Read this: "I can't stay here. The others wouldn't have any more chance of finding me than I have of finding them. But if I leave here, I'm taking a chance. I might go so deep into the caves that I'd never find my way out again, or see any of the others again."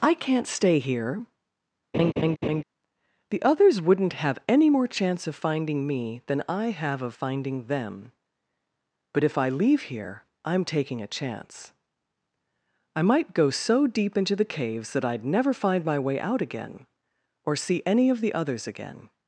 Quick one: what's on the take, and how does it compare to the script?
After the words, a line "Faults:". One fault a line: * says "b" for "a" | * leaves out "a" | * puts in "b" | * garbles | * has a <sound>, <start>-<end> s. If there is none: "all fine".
"I can't stay here. The others wouldn't have any more chance of finding me than I have of finding them. But if I leave here, I'm taking a chance. I might go so deep into the caves that I'd never find my way out again, or see any of the others again."
Faults:
* has a laugh, 1.9-2.6 s